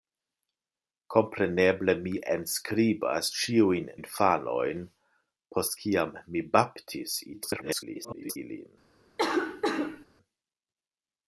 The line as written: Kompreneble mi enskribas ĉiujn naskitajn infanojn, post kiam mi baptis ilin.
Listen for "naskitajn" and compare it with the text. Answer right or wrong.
wrong